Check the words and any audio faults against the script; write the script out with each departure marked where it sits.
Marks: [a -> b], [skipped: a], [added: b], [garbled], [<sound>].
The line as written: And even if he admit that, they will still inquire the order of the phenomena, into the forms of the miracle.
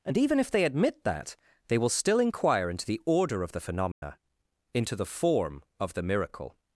And even if [he -> they] admit that, they will still inquire [added: into] the order of the phenomena, [dropout] into the [forms -> form] of the miracle.